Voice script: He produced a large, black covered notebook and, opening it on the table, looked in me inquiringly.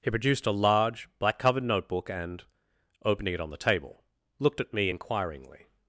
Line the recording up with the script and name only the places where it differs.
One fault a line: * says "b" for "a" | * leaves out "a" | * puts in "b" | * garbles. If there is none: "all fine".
* says "at" for "in"